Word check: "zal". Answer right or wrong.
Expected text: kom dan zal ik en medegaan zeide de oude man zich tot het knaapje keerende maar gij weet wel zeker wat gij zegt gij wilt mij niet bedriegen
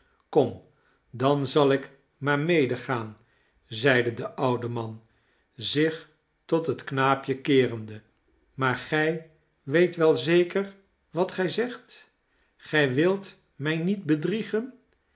right